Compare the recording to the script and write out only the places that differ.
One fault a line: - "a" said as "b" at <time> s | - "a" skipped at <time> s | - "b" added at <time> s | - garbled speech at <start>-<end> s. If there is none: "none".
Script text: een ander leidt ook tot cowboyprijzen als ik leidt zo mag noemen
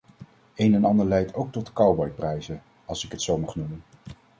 - "en" added at 0.7 s
- "leidt" said as "het" at 3.1 s